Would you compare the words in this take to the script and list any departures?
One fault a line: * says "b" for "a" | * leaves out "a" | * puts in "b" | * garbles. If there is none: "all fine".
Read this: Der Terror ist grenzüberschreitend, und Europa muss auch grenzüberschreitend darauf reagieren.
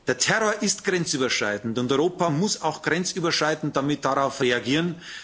all fine